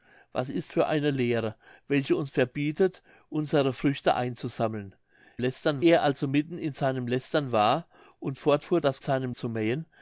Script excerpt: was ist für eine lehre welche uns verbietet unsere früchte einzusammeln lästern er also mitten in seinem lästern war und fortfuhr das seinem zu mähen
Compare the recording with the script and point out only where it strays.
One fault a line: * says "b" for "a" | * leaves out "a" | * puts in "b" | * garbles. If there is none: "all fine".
all fine